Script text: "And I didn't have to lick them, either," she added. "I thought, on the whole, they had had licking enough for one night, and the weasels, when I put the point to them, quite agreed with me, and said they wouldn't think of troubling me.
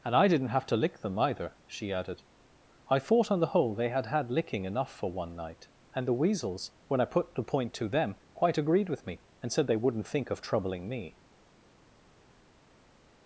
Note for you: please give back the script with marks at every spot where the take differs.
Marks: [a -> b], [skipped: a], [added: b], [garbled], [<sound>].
"And I didn't have to lick them, either," she added. "I thought, on the whole, they had had licking enough for one night, and the weasels, when I put the point to them, quite agreed with me, and said they wouldn't think of troubling me.